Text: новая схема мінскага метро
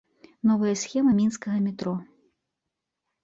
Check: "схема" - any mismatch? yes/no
no